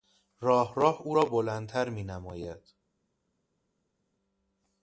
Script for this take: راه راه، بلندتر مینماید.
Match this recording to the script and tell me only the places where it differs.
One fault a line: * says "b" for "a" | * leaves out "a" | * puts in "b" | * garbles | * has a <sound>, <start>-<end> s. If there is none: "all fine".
* puts in "او را"